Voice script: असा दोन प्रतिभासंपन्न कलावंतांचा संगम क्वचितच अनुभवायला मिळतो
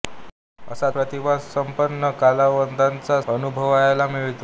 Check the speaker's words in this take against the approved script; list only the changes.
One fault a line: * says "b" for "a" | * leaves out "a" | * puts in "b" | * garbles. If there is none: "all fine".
* leaves out "दोन"
* leaves out "संगम क्वचितच"